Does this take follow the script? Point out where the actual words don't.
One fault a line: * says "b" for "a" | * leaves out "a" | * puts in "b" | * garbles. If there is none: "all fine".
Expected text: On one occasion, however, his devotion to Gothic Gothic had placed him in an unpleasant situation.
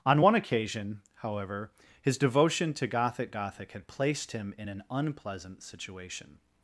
all fine